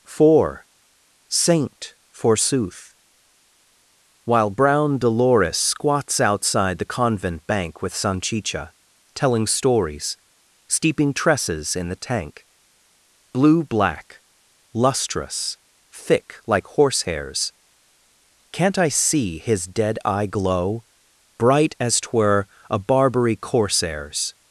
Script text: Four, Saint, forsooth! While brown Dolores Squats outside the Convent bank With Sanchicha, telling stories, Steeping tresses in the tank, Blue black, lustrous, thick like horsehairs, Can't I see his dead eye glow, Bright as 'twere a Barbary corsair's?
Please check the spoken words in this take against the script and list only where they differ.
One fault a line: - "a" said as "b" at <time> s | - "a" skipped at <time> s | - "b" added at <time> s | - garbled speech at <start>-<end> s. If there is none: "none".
none